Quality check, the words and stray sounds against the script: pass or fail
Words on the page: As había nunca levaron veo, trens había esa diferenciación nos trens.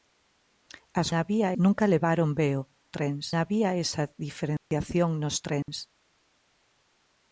fail